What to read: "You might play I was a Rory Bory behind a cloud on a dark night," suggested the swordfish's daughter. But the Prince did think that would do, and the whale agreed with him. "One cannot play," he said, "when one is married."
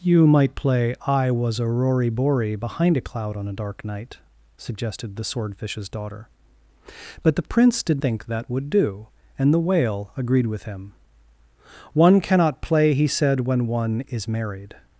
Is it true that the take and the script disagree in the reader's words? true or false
false